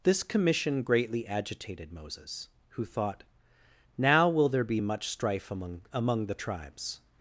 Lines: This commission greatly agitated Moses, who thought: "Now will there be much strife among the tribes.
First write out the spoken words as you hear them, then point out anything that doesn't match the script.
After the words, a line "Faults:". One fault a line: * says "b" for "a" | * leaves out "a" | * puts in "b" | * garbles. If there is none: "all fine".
This commission greatly agitated Moses, who thought: "Now will there be much strife among among the tribes.
Faults:
* puts in "among"